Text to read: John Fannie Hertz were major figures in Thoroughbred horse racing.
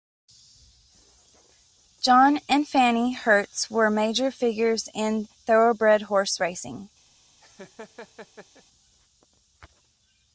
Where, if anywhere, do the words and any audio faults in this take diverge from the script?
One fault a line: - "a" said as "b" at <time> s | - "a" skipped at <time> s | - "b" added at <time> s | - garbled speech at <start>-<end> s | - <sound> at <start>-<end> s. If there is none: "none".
- "and" added at 2.5 s
- laugh at 7.4-8.6 s